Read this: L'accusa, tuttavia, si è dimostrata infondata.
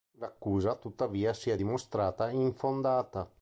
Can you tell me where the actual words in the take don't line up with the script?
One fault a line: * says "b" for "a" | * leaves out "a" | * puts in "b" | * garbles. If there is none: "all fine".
all fine